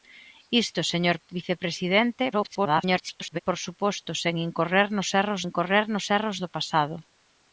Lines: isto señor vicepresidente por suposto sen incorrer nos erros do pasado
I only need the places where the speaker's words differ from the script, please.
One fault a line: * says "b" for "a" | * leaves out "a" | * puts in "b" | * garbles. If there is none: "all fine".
* garbles
* puts in "incorrer nos erros"